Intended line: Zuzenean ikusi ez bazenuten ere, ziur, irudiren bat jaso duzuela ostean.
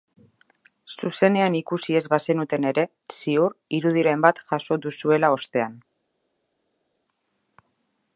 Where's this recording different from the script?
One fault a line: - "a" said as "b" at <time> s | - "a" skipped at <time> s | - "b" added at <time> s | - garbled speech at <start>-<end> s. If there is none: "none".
none